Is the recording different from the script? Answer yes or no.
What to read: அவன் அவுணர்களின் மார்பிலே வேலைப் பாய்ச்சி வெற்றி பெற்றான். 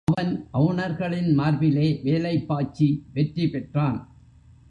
no